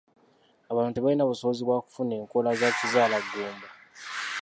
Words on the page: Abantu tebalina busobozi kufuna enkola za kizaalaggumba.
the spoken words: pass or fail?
fail